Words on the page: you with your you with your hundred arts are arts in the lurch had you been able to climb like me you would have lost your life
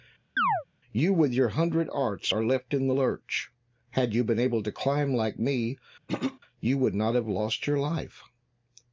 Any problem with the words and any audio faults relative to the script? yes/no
yes